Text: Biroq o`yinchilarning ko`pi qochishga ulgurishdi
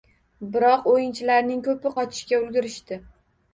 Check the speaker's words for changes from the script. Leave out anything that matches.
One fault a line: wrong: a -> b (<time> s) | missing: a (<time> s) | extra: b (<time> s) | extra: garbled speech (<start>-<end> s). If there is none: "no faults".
no faults